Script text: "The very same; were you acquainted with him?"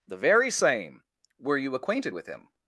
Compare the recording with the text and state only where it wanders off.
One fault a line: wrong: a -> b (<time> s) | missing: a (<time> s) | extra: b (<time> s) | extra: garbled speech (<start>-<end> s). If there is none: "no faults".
no faults